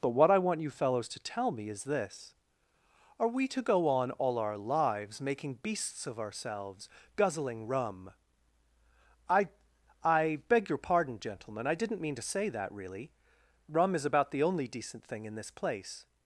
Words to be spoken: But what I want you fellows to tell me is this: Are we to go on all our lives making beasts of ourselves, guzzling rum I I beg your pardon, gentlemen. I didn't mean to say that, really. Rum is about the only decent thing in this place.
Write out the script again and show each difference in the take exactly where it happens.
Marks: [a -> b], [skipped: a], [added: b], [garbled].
But what I want you fellows to tell me is this: Are we to go on all our lives making beasts of ourselves, guzzling rum I I beg your pardon, gentlemen. I didn't mean to say that, really. Rum is about the only decent thing in this place.